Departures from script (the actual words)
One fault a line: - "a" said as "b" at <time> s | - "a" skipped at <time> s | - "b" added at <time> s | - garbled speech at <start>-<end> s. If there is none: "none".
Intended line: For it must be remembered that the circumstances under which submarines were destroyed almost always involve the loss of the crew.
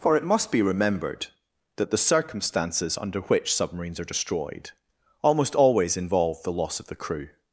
- "were" said as "are" at 4.0 s